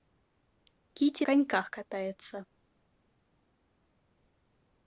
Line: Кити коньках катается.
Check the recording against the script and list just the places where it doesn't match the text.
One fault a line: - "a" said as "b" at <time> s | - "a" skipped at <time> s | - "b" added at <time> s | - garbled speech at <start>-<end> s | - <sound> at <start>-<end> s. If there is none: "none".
none